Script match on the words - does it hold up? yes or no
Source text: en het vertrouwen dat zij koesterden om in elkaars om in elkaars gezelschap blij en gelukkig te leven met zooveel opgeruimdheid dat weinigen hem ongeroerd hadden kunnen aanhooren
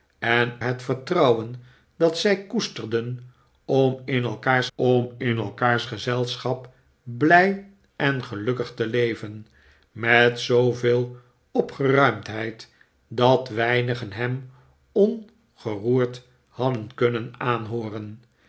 yes